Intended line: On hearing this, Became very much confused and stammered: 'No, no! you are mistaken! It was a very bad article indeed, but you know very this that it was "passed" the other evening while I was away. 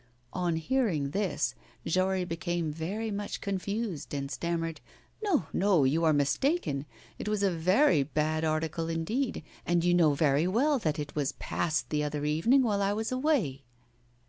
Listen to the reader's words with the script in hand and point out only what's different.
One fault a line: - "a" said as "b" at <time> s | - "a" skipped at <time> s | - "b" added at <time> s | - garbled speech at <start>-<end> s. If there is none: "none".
- "Jory" added at 1.9 s
- "but" said as "and" at 9.6 s
- "this" said as "well" at 10.5 s